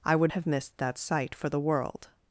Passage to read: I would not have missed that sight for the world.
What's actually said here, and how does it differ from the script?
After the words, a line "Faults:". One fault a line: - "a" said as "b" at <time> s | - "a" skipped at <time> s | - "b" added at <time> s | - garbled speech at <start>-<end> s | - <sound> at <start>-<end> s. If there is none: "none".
I would have missed that sight for the world.
Faults:
- "not" skipped at 0.3 s